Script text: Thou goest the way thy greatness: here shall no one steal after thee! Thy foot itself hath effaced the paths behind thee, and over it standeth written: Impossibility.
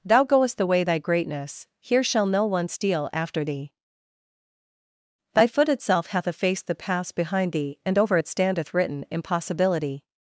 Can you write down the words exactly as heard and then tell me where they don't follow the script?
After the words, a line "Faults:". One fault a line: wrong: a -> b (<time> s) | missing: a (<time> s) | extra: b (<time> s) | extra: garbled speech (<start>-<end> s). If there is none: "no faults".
Thou goest the way thy greatness: here shall no one steal after thee! Thy foot itself hath effaced the paths behind thee, and over it standeth written: Impossibility.
Faults:
no faults